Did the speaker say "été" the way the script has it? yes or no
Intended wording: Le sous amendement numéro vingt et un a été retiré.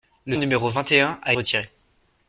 no